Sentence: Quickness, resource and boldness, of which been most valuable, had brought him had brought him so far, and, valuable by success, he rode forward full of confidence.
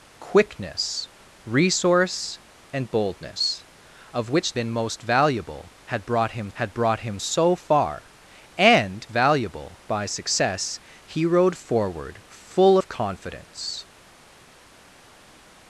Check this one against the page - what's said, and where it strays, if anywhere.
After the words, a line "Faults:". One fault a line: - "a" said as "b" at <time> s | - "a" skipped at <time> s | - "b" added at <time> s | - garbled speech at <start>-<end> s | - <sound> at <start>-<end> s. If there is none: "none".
Quickness, resource and boldness, of which been most valuable, had brought him had brought him so far, and, valuable by success, he rode forward full of confidence.
Faults:
none